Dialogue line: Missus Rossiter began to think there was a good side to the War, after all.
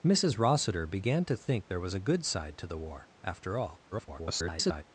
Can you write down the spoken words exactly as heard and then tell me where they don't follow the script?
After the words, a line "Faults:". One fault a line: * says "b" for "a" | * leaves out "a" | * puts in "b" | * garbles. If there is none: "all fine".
Missus Rossiter began to think there was a good side to the War, after all. [garbled]
Faults:
* garbles